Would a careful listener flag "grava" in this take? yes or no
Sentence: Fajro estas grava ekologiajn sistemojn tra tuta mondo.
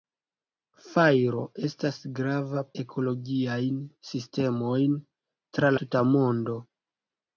no